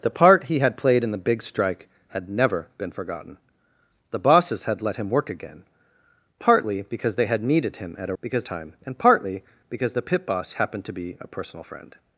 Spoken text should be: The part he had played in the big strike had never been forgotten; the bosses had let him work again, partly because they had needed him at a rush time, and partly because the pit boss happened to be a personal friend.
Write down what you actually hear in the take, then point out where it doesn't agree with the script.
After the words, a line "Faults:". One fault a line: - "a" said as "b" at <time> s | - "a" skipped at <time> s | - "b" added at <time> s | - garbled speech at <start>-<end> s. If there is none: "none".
The part he had played in the big strike had never been forgotten; the bosses had let him work again, partly because they had needed him at a because time, and partly because the pit boss happened to be a personal friend.
Faults:
- "rush" said as "because" at 8.2 s